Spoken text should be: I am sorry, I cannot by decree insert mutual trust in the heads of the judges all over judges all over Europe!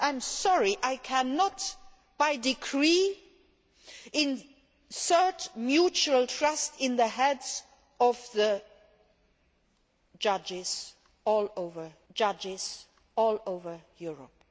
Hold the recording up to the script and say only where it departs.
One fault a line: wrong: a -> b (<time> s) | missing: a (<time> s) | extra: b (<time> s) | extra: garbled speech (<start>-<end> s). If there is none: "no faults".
no faults